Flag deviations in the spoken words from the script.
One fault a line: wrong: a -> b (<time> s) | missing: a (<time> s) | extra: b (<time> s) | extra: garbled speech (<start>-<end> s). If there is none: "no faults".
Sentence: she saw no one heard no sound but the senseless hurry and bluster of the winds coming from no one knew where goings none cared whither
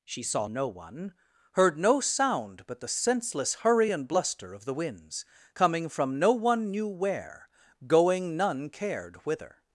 wrong: goings -> going (7.9 s)